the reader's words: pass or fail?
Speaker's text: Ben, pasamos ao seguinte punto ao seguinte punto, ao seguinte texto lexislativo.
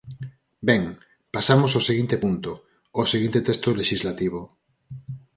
fail